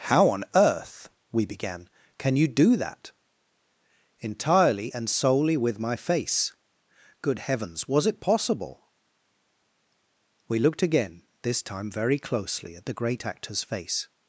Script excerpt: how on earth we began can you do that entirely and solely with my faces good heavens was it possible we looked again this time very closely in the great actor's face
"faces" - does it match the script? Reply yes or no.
no